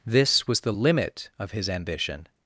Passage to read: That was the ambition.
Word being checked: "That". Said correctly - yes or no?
no